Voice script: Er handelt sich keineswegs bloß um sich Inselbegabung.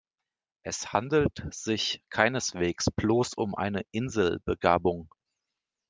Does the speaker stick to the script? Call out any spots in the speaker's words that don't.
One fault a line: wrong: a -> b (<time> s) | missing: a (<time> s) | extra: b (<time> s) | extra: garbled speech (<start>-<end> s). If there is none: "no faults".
wrong: Er -> Es (0.6 s)
wrong: sich -> eine (3.5 s)